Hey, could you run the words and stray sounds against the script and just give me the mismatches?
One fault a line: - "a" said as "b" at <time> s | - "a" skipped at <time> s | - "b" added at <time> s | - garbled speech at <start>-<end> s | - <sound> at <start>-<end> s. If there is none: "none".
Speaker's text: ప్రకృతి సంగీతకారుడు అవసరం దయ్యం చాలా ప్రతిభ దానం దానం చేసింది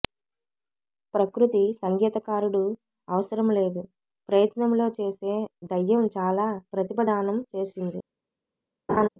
- "లేదు ప్రయత్నంలో చేసే" added at 3.6 s
- "దానం" skipped at 7.4 s
- laugh at 8.9-9.1 s